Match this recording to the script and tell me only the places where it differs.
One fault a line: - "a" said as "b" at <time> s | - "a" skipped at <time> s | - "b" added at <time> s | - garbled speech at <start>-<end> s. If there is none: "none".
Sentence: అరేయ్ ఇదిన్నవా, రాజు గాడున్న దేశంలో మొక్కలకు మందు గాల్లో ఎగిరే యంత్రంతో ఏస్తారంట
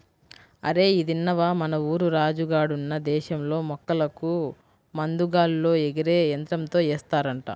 - "మన ఊరు" added at 1.5 s